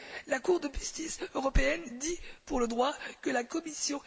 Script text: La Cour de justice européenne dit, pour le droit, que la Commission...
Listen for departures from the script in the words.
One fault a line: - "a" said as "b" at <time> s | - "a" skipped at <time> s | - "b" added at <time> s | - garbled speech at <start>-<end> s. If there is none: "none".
none